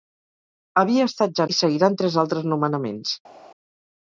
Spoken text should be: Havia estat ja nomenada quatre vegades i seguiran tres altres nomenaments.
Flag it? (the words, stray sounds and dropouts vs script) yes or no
yes